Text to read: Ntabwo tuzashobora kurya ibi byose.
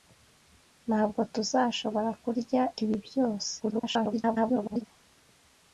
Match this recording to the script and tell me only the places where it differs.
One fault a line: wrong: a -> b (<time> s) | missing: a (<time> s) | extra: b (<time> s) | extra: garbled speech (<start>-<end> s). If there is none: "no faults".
extra: garbled speech (3.6-4.9 s)